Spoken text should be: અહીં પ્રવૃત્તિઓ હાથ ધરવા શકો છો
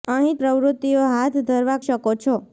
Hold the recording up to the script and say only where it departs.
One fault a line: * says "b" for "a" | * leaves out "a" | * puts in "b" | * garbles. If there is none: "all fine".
all fine